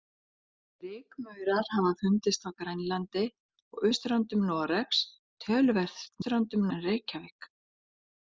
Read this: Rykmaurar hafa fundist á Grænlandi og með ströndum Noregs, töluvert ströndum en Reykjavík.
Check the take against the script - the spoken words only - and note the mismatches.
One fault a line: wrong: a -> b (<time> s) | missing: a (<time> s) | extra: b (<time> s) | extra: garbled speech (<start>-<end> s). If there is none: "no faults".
no faults